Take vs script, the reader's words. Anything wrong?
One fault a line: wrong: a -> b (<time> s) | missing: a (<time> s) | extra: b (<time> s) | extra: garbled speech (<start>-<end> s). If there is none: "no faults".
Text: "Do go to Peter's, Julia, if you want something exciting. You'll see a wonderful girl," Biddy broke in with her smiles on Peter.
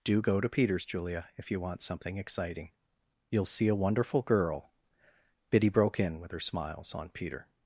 no faults